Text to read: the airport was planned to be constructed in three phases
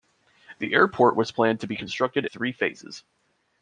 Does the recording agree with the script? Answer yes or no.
no